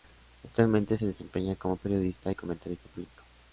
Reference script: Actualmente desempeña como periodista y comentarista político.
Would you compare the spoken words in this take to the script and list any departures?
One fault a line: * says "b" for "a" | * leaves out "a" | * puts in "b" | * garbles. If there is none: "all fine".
* puts in "se"